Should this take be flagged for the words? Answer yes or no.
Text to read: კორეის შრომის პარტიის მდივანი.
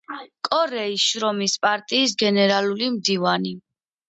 yes